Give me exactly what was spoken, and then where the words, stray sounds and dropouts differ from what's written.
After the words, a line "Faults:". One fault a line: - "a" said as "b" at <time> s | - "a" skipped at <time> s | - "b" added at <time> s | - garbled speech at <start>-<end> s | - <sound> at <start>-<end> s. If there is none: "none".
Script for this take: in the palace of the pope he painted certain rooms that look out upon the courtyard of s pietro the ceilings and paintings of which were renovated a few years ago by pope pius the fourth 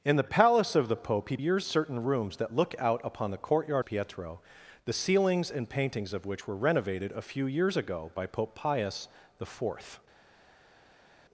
in the palace of the pope he years certain rooms that look out upon the courtyard pietro the ceilings and paintings of which were renovated a few years ago by pope pius the fourth
Faults:
- "painted" said as "years" at 1.3 s
- "of s" skipped at 3.8 s